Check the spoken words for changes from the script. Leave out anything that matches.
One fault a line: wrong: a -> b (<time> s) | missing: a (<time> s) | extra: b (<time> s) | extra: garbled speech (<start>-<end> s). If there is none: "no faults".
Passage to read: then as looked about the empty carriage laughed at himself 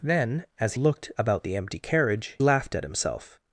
no faults